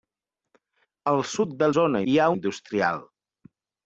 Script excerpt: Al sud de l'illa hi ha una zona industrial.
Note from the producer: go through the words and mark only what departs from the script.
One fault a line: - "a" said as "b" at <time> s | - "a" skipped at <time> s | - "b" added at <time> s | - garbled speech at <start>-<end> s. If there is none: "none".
- "l'illa" said as "zona" at 1.8 s
- "una zona" skipped at 2.3 s